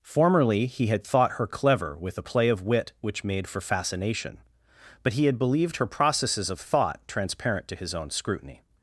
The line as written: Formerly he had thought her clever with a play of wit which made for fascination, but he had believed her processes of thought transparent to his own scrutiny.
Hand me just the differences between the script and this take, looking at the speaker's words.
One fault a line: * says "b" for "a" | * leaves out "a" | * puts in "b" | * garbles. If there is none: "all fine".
all fine